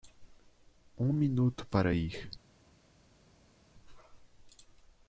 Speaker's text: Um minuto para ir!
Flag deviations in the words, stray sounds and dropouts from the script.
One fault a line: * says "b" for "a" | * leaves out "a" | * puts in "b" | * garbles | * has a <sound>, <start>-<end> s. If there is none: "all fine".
all fine